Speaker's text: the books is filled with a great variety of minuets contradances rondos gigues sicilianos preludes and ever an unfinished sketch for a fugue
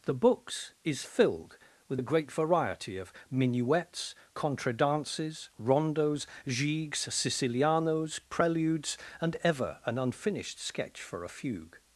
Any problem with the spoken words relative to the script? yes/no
no